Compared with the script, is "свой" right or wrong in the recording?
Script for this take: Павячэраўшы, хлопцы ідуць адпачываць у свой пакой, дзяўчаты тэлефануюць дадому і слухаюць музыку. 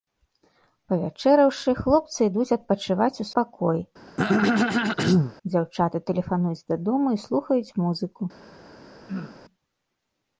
wrong